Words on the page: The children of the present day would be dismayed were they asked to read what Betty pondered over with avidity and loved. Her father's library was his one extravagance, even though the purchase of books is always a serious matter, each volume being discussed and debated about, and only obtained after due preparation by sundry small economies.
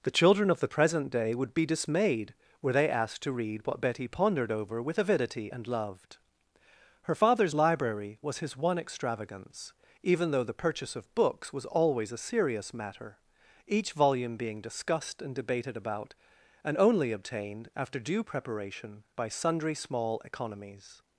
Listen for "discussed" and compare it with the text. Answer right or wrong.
right